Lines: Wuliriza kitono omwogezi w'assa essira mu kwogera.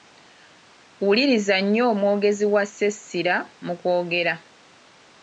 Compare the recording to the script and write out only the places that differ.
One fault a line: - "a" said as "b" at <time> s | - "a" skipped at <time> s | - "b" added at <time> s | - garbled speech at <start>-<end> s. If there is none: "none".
- "kitono" said as "nnyo" at 1.6 s